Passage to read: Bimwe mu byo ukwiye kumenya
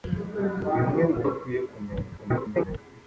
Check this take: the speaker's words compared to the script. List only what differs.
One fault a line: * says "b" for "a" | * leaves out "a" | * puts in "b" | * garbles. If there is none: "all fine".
* leaves out "byo"
* garbles